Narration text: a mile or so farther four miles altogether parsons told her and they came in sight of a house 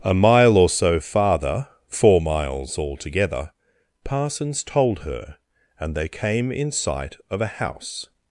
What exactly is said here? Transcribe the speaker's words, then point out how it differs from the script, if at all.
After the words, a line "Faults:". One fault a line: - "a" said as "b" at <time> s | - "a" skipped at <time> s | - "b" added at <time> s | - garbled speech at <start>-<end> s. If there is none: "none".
a mile or so farther four miles altogether parsons told her and they came in sight of a house
Faults:
none